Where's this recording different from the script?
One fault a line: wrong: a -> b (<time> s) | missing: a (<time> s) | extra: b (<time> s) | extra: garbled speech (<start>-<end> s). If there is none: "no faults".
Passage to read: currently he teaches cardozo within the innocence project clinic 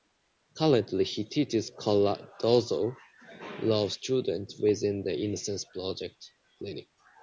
extra: law students (3.6 s)